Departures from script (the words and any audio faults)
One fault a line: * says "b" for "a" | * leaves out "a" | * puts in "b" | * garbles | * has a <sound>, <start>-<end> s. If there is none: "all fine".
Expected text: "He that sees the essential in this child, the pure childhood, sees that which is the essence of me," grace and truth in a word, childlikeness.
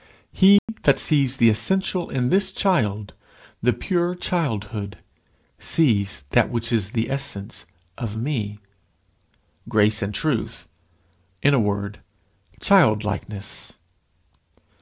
* has a dropout, 0.6-0.7 s